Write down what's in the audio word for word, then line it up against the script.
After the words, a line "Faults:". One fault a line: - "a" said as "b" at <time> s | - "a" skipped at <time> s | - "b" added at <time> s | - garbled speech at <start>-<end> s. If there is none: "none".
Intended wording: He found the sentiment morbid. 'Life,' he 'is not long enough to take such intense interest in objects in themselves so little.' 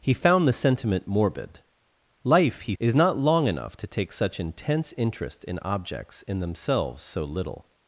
He found the sentiment morbid. 'Life,' he 'is not long enough to take such intense interest in objects in themselves so little.'
Faults:
none